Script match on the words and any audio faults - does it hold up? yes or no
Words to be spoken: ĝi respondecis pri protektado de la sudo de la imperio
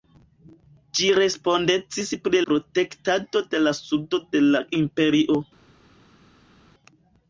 yes